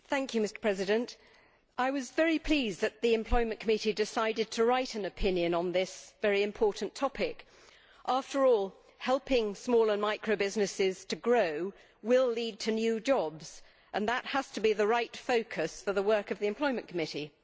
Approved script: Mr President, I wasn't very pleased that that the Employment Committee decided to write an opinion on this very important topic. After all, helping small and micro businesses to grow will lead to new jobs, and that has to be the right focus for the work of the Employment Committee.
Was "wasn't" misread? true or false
true